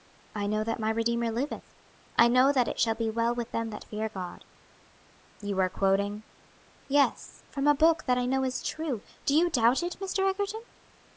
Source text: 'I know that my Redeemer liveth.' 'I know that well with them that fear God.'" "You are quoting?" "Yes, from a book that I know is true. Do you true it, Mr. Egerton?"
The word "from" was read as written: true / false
true